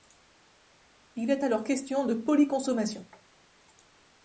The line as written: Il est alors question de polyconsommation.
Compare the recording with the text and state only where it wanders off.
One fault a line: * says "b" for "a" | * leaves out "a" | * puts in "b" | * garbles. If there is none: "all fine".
all fine